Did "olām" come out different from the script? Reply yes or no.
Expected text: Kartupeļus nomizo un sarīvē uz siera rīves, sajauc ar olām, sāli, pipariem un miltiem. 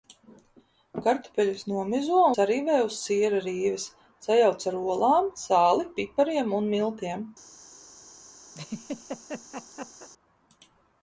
no